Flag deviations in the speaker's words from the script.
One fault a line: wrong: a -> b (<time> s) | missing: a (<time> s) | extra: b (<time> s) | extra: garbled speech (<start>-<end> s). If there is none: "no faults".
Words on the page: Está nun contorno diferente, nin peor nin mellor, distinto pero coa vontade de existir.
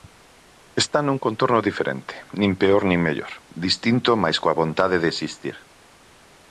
wrong: pero -> mais (4.2 s)